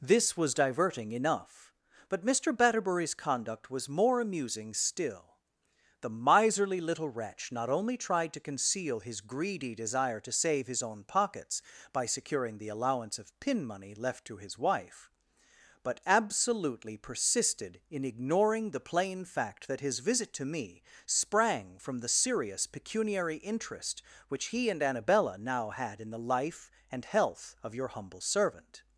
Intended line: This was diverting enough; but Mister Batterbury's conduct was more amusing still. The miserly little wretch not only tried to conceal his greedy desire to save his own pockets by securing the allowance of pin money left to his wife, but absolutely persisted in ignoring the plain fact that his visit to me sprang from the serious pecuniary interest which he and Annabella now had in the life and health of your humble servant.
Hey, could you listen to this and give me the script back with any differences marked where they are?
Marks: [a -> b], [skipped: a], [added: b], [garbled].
This was diverting enough; but Mister Batterbury's conduct was more amusing still. The miserly little wretch not only tried to conceal his greedy desire to save his own pockets by securing the allowance of pin money left to his wife, but absolutely persisted in ignoring the plain fact that his visit to me sprang from the serious pecuniary interest which he and Annabella now had in the life and health of your humble servant.